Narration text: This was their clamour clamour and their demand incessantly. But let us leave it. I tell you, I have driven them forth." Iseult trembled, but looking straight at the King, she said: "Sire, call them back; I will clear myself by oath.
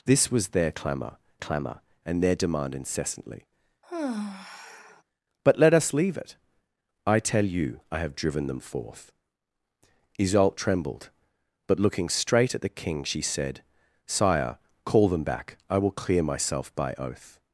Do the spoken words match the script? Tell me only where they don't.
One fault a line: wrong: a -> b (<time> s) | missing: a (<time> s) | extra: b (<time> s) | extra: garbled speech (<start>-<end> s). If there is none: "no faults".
no faults